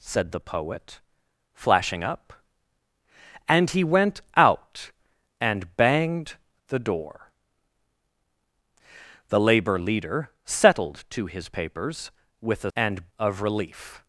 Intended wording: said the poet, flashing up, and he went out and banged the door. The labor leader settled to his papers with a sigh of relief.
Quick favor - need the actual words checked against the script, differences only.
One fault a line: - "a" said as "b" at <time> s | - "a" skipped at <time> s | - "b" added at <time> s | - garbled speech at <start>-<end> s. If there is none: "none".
- "sigh" said as "and" at 12.7 s